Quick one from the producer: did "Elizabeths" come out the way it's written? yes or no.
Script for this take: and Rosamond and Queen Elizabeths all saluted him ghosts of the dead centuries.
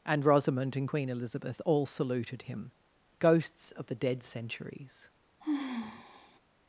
no